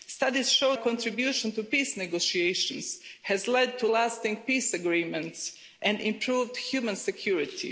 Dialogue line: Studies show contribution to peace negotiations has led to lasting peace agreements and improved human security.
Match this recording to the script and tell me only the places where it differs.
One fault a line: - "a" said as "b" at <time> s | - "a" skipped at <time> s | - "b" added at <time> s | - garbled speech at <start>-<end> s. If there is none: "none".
none